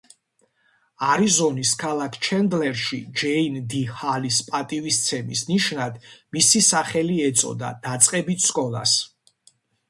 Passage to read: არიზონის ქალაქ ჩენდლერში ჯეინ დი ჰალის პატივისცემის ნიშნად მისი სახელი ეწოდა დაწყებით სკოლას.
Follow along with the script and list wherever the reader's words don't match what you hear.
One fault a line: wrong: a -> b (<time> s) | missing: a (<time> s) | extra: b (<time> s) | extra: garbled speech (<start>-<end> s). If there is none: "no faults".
no faults